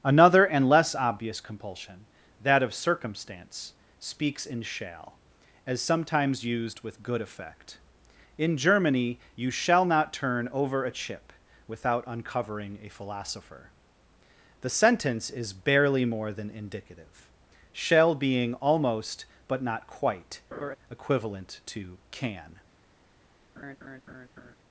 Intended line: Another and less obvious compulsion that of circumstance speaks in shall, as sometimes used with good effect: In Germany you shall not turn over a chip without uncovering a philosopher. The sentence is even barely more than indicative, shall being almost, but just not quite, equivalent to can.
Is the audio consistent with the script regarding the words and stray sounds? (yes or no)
no